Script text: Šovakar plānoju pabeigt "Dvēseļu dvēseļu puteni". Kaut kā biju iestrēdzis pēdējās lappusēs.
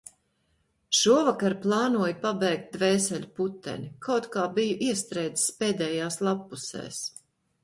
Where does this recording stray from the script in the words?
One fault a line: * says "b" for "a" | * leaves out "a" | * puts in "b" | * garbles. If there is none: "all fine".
* leaves out "dvēseļu"